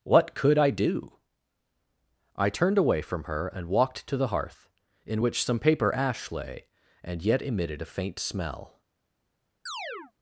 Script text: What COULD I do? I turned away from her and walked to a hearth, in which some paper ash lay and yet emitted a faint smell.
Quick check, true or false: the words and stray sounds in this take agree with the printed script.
false